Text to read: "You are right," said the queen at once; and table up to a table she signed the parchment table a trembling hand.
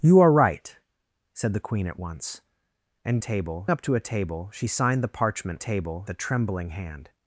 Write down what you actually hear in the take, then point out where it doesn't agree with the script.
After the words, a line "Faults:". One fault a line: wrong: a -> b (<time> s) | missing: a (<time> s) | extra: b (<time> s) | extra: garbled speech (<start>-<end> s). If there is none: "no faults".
"You are right," said the queen at once; and table up to a table she signed the parchment table a trembling hand.
Faults:
no faults